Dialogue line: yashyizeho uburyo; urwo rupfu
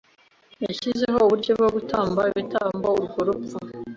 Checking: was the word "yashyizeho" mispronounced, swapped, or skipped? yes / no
no